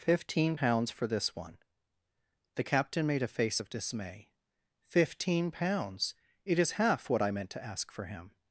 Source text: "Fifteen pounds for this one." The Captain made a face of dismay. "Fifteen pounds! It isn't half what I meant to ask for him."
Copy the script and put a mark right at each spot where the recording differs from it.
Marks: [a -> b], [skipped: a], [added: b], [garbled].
"Fifteen pounds for this one." The Captain made a face of dismay. "Fifteen pounds! It [isn't -> is] half what I meant to ask for him."